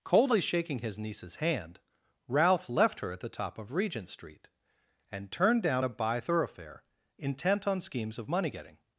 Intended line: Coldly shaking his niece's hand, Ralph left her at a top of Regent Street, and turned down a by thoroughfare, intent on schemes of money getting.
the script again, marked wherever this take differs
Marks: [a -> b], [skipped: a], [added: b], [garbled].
Coldly shaking his niece's hand, Ralph left her at [a -> the] top of Regent Street, and turned down a by thoroughfare, intent on schemes of money getting.